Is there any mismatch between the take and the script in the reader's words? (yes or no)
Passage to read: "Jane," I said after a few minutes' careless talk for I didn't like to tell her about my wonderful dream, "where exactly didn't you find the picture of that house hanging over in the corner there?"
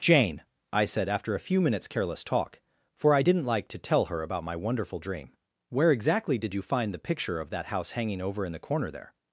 yes